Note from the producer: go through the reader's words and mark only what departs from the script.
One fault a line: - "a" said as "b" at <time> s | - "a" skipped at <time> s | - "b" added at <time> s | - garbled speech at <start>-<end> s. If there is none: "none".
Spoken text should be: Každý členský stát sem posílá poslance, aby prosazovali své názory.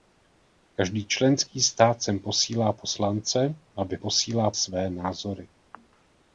- "prosazovali" said as "posílá" at 4.0 s